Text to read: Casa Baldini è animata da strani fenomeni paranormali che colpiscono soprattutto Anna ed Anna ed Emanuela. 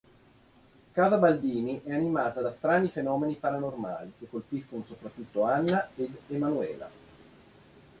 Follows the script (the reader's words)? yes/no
no